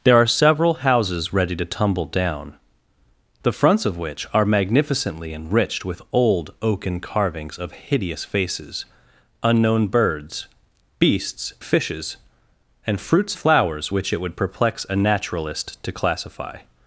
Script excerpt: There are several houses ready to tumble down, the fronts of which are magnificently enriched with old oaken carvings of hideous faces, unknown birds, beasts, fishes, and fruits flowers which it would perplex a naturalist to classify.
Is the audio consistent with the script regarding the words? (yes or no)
yes